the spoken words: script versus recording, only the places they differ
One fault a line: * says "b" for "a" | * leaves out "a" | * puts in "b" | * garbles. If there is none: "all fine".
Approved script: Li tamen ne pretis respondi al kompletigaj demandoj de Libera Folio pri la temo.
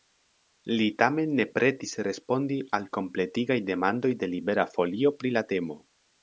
all fine